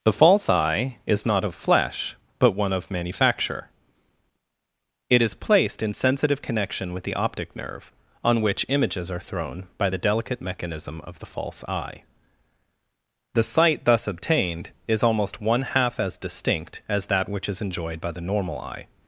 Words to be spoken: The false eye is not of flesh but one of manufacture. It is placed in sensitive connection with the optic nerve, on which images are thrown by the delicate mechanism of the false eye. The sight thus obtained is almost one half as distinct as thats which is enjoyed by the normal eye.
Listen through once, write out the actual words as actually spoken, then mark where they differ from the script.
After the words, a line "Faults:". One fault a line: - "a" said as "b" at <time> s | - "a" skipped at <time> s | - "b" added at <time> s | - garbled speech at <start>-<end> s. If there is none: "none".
The false eye is not of flesh but one of manufacture. It is placed in sensitive connection with the optic nerve, on which images are thrown by the delicate mechanism of the false eye. The sight thus obtained is almost one half as distinct as that which is enjoyed by the normal eye.
Faults:
- "thats" said as "that" at 17.1 s